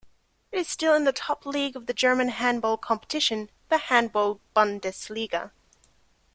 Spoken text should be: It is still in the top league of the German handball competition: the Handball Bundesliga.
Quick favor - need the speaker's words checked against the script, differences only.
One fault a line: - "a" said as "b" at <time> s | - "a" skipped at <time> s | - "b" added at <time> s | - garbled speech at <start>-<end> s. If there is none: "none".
none